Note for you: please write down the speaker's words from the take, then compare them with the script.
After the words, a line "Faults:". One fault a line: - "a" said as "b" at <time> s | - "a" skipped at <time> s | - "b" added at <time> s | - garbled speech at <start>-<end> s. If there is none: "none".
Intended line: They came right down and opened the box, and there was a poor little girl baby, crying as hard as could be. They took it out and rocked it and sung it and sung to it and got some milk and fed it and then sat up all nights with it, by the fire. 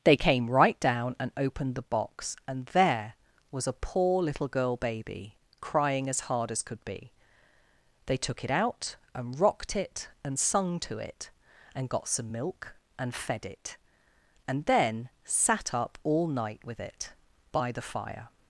They came right down and opened the box, and there was a poor little girl baby, crying as hard as could be. They took it out and rocked it and sung to it and got some milk and fed it and then sat up all night with it, by the fire.
Faults:
- "it and sung" skipped at 10.8 s
- "nights" said as "night" at 16.3 s